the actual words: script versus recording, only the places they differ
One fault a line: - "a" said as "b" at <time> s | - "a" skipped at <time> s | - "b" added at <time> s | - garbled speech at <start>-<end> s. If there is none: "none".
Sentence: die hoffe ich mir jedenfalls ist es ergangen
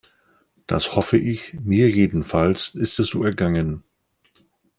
- "die" said as "das" at 0.7 s
- "so" added at 3.1 s